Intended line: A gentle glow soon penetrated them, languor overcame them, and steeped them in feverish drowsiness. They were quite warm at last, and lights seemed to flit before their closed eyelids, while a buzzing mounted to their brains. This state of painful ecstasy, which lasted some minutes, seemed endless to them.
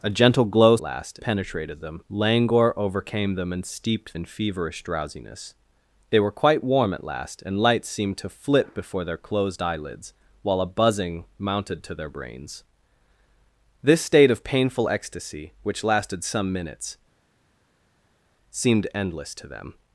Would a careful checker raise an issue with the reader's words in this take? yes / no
yes